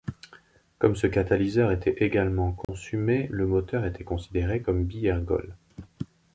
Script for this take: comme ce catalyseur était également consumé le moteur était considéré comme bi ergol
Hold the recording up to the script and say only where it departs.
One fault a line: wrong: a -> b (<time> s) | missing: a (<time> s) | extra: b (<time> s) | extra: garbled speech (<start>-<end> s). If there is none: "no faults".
no faults